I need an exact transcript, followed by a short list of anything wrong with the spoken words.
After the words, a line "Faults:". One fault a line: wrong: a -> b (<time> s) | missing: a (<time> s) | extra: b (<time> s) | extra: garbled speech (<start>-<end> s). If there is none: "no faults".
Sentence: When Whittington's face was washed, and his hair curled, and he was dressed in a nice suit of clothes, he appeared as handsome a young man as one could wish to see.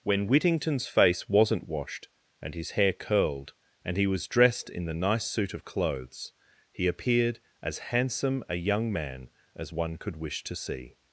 When Whittington's face wasn't washed, and his hair curled, and he was dressed in the nice suit of clothes, he appeared as handsome a young man as one could wish to see.
Faults:
wrong: was -> wasn't (1.3 s)
wrong: a -> the (4.8 s)